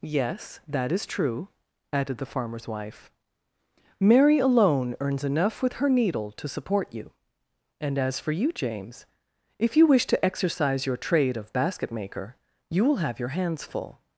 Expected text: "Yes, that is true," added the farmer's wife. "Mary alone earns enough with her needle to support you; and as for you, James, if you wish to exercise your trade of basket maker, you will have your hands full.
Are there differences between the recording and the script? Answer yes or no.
no